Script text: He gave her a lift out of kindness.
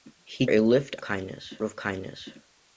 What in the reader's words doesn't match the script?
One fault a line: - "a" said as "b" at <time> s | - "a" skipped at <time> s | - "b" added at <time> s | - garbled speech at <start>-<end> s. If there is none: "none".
- "gave her" skipped at 0.5 s
- "out" said as "kindness" at 1.0 s